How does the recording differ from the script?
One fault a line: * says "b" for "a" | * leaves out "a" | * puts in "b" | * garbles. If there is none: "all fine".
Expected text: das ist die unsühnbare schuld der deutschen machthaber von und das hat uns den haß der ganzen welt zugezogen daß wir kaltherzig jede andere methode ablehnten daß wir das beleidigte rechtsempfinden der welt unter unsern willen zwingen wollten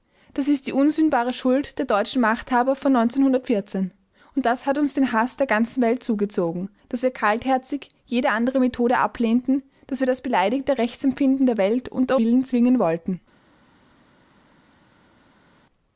* leaves out "unsern"